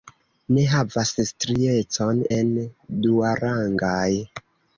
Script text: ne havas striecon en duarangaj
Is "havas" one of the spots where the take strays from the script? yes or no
no